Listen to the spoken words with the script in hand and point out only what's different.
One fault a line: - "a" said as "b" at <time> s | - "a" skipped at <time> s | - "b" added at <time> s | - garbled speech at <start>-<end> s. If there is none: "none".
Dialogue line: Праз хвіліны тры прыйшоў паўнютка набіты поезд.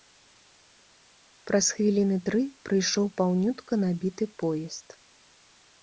none